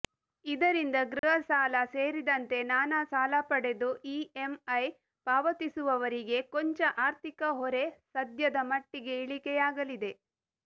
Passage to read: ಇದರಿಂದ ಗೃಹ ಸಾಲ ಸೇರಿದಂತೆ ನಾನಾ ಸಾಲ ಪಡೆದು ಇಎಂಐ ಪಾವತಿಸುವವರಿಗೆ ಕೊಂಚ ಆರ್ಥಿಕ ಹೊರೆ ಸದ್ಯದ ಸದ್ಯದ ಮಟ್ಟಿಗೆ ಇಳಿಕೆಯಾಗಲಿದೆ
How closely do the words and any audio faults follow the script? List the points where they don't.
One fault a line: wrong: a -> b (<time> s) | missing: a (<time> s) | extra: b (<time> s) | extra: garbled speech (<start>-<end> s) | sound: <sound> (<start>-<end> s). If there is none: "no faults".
sound: dropout (1.2-1.2 s)
missing: ಸದ್ಯದ (8.6 s)